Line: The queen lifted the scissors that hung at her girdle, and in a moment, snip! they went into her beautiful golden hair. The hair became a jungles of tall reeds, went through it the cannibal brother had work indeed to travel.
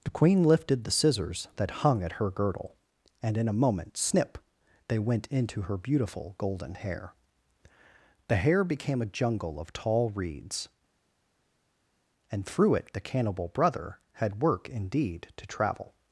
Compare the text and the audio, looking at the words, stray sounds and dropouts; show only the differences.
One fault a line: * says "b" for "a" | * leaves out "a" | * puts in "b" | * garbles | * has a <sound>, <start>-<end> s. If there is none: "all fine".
* says "jungle" for "jungles"
* says "and" for "went"